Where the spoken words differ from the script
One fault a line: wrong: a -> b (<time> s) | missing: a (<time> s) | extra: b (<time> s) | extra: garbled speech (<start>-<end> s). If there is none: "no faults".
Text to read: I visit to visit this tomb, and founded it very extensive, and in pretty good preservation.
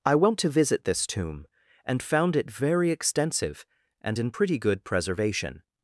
wrong: visit -> went (0.1 s)
wrong: founded -> found (2.0 s)